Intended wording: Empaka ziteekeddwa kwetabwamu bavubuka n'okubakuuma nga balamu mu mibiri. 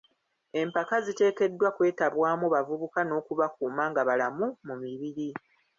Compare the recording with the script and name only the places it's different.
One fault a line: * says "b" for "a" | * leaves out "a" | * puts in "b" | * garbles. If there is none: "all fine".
all fine